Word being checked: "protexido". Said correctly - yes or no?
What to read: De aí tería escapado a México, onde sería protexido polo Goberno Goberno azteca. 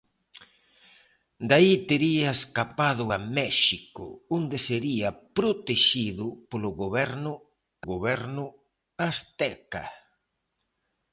yes